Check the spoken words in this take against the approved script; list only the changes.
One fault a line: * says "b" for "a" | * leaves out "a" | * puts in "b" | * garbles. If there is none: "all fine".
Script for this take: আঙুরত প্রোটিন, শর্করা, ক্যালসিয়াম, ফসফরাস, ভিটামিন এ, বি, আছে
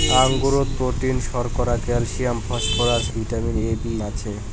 all fine